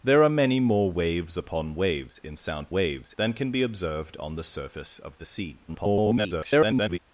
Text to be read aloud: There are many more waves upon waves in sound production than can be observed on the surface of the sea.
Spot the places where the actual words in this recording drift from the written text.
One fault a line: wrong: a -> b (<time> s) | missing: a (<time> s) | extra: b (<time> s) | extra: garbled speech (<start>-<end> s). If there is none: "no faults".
wrong: production -> waves (2.7 s)
extra: garbled speech (5.7-7.0 s)